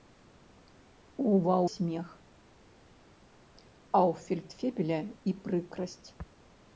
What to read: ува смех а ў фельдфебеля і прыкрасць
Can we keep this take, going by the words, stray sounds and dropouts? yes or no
yes